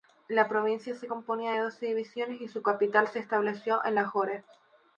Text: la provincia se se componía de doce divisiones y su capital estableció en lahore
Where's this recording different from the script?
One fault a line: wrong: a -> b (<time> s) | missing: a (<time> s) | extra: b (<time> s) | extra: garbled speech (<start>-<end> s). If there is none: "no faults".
missing: se (1.1 s)
extra: se (3.1 s)